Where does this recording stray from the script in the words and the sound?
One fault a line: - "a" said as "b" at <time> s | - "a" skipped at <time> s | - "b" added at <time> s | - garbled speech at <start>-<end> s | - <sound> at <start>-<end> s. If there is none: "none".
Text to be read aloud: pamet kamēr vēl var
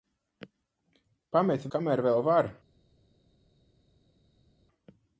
none